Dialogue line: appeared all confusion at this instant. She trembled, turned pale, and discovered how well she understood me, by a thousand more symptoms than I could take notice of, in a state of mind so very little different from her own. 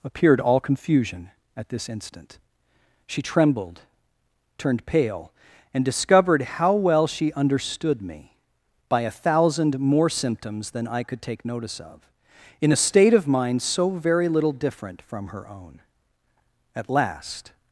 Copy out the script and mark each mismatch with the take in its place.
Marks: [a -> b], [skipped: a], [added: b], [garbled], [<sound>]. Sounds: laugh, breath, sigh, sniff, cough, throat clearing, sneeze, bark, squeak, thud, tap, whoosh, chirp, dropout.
appeared all confusion at this instant. She trembled, turned pale, and discovered how well she understood me, by a thousand more symptoms than I could take notice of, in a state of mind so very little different from her own. [added: At last]